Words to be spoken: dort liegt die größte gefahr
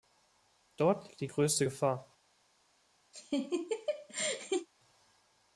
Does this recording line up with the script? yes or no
yes